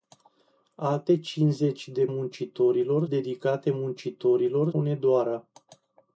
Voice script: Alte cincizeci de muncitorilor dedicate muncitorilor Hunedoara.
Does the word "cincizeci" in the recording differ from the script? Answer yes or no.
no